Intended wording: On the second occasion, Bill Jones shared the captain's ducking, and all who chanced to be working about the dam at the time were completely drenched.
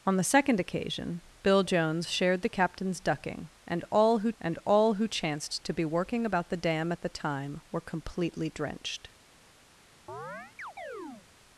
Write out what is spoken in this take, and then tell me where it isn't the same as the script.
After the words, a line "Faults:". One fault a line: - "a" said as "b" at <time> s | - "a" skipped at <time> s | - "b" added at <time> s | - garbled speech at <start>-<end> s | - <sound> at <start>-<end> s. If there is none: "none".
On the second occasion, Bill Jones shared the captain's ducking, and all who and all who chanced to be working about the dam at the time were completely drenched.
Faults:
- "and all who" added at 4.4 s
- chirp at 10.1-11.3 s